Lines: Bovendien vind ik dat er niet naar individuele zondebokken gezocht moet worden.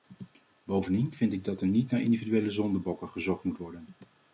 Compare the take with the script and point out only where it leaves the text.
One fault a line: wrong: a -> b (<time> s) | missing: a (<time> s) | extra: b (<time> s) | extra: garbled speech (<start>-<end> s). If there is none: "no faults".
no faults